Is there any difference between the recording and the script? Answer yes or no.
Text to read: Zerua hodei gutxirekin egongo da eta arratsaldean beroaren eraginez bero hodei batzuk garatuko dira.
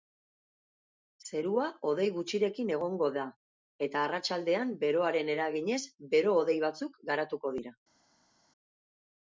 no